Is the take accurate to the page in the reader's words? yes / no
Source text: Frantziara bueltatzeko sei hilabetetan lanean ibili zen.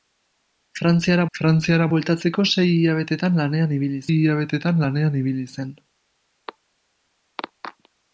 no